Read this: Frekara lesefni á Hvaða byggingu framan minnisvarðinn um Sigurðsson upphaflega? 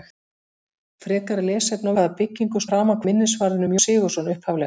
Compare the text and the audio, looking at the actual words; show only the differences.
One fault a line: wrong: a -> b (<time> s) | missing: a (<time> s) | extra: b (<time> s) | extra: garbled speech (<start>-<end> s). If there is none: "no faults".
no faults